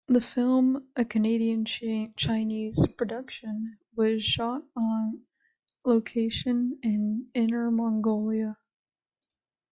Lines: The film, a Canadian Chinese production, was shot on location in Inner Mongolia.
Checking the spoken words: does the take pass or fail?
pass